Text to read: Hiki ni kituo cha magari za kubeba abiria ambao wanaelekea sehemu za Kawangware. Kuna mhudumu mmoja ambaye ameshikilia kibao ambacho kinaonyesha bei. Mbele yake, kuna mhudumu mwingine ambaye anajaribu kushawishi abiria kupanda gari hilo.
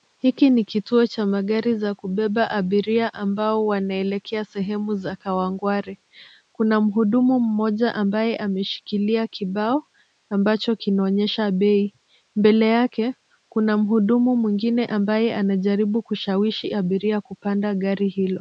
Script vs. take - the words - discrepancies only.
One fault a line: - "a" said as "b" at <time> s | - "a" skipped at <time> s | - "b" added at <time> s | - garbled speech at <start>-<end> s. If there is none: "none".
none